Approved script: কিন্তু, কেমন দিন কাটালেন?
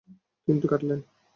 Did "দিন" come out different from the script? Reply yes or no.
yes